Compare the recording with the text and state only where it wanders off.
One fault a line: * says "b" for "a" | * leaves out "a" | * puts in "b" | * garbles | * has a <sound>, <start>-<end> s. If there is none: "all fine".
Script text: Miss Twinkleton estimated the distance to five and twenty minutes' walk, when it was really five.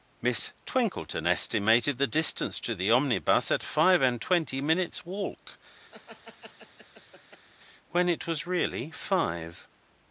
* puts in "the omnibus at"
* has a laugh, 5.9-7.5 s